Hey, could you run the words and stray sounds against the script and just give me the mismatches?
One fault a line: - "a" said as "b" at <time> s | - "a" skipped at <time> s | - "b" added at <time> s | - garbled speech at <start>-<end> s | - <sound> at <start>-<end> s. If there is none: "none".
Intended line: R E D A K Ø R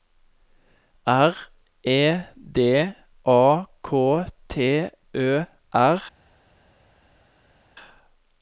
- "T" added at 4.5 s